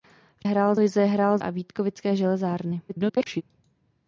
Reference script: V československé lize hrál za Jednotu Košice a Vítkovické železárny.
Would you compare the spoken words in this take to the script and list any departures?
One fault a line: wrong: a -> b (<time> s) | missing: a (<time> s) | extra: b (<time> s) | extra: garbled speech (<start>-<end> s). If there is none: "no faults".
wrong: československé -> hrál (0.4 s)
missing: za Jednotu Košice (1.4 s)
extra: garbled speech (2.9-3.4 s)